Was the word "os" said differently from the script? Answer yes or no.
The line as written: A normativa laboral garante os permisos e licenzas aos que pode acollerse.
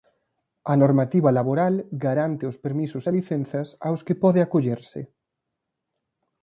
no